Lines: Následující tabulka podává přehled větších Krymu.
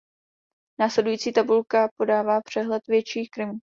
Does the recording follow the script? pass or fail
pass